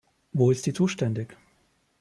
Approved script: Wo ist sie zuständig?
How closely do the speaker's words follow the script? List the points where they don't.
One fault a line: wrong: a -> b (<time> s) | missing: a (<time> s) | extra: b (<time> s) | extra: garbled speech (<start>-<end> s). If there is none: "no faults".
no faults